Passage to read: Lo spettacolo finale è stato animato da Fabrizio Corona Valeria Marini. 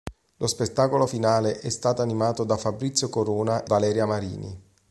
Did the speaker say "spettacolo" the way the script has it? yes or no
yes